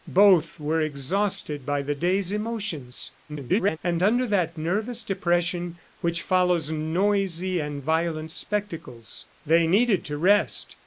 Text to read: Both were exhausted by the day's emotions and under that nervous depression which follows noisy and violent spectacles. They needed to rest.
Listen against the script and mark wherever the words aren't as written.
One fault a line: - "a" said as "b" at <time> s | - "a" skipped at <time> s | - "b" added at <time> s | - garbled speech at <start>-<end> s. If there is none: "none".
- garbled speech at 3.3-3.8 s